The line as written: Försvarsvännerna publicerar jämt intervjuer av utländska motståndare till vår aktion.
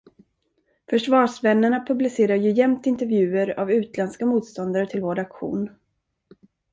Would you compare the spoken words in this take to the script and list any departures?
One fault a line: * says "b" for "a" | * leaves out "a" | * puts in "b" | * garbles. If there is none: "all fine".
* puts in "ju"